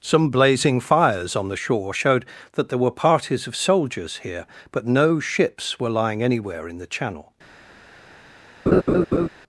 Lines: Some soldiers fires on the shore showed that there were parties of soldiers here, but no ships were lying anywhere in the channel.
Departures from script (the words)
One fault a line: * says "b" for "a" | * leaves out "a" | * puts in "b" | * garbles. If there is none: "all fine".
* says "blazing" for "soldiers"